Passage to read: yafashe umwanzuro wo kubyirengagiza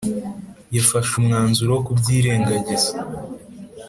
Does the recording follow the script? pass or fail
pass